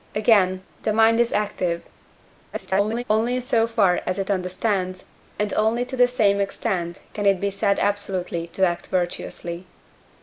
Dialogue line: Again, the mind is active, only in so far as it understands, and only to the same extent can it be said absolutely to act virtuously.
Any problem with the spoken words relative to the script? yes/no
yes